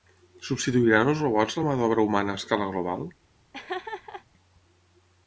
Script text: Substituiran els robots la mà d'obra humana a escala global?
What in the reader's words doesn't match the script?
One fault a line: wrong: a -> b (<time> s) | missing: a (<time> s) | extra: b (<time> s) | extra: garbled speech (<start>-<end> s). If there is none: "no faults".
no faults